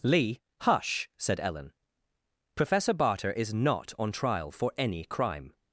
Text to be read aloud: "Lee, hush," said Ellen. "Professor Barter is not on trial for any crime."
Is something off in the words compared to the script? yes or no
no